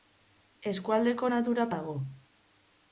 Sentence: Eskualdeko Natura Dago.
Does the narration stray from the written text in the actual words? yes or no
no